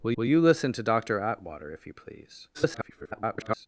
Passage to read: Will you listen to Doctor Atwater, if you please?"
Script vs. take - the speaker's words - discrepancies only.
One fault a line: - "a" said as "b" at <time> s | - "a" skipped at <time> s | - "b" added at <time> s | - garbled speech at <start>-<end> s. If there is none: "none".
- "will" added at 0.2 s
- garbled speech at 2.5-3.7 s